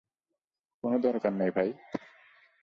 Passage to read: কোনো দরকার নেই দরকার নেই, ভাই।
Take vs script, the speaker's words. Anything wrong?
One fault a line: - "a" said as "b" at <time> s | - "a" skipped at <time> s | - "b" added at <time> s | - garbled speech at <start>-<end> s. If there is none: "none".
- "দরকার নেই" skipped at 1.5 s